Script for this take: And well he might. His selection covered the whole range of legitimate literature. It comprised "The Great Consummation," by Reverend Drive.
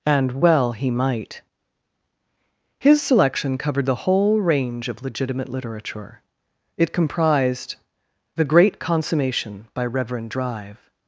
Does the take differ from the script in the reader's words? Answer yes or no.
no